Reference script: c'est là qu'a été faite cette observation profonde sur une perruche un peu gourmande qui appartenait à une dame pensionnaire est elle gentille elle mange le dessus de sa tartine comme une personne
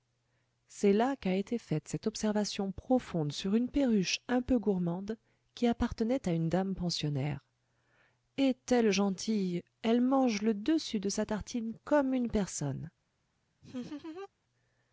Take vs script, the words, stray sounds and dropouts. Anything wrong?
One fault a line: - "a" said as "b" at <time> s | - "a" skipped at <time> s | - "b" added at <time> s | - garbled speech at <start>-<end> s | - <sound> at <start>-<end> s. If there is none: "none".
- laugh at 13.6-14.3 s